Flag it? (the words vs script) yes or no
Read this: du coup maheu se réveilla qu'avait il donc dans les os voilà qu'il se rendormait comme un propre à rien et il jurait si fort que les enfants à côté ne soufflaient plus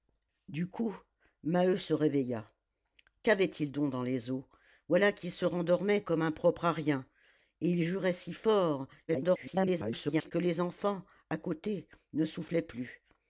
yes